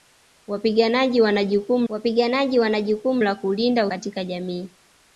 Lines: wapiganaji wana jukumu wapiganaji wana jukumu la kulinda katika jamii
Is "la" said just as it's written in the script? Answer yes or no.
yes